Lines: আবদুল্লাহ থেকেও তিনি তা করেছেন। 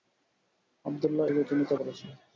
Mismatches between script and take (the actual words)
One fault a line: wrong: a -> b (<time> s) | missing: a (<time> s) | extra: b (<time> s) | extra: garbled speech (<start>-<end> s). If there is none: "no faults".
no faults